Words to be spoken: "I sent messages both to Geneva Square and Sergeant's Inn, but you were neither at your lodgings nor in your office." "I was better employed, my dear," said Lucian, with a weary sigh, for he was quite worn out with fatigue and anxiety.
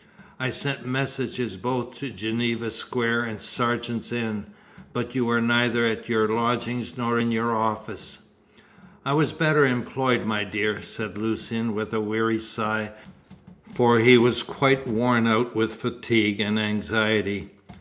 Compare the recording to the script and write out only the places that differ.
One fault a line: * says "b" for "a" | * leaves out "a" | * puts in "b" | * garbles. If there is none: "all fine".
all fine